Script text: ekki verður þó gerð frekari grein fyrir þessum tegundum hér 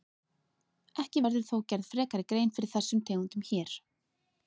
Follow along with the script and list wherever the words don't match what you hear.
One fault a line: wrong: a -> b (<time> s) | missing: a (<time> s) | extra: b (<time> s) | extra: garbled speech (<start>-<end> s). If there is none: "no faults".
no faults